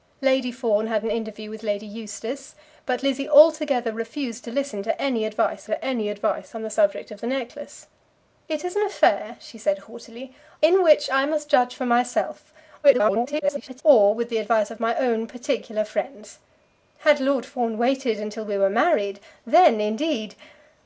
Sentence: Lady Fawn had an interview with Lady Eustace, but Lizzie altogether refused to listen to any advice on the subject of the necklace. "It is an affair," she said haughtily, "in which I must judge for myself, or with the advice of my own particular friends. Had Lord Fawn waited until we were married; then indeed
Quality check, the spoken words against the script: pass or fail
fail